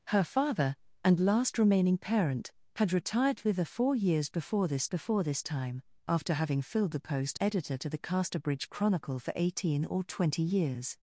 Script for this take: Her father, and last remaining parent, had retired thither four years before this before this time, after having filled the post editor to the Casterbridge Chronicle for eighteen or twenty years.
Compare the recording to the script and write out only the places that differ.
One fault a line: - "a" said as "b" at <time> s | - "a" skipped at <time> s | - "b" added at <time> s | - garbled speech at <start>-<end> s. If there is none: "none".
none